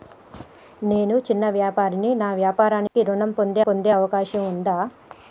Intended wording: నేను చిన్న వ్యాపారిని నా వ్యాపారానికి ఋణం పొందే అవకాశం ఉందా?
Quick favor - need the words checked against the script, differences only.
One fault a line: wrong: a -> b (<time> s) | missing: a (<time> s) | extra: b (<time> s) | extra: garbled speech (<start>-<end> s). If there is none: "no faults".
extra: పొందే (3.6 s)